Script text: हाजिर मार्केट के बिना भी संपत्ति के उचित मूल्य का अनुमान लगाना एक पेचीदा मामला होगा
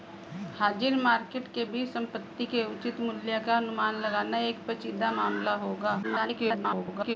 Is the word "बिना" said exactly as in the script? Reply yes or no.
no